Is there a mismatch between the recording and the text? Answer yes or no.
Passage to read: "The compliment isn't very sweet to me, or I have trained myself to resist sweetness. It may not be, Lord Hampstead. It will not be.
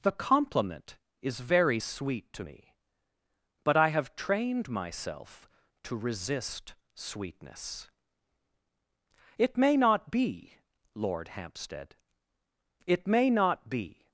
yes